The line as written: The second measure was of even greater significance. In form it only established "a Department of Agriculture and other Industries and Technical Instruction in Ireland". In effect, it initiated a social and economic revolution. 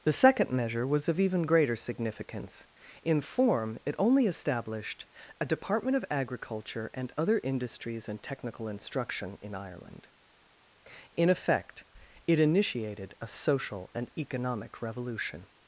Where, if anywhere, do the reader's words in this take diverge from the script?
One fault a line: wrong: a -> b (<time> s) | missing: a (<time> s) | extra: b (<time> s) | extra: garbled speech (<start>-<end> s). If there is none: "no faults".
no faults